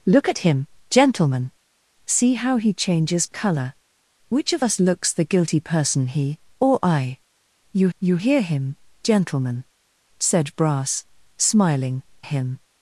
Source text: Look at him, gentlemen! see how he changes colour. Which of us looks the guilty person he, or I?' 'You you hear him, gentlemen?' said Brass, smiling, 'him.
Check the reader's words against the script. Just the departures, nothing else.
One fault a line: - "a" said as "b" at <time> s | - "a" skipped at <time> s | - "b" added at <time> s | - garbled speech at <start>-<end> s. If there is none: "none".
none